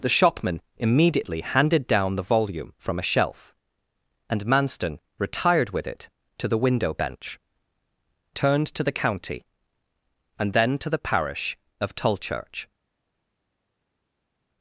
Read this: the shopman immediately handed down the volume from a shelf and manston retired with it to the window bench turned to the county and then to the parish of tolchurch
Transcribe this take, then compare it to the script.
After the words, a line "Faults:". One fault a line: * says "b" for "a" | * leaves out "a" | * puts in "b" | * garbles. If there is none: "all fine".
the shopman immediately handed down the volume from a shelf and manston retired with it to the window bench turned to the county and then to the parish of tolchurch
Faults:
all fine